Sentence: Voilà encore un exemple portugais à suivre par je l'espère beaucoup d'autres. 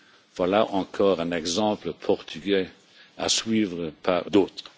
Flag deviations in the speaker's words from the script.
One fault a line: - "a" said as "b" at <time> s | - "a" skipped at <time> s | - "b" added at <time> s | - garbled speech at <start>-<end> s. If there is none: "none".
- "je l'espère beaucoup" skipped at 4.2 s